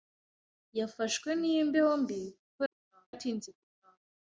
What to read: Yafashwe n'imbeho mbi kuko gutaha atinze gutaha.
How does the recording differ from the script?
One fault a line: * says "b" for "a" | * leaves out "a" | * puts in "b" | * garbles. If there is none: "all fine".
all fine